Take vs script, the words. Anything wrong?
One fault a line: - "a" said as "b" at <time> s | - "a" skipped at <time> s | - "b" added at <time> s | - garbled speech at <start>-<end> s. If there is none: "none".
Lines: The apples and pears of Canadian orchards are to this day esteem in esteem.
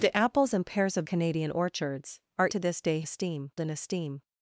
none